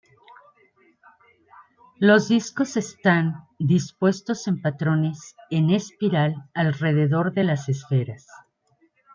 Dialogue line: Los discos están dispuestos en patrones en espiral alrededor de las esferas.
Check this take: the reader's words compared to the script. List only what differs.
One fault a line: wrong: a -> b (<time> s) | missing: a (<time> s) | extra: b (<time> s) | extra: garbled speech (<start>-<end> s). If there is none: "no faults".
no faults